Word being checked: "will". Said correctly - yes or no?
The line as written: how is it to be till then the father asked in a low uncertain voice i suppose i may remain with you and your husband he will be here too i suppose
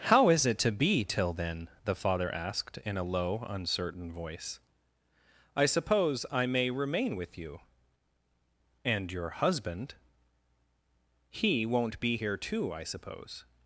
no